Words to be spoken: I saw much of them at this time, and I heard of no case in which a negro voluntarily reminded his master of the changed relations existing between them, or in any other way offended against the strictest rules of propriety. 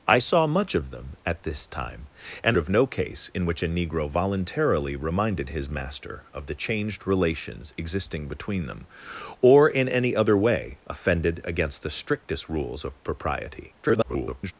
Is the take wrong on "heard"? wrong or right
wrong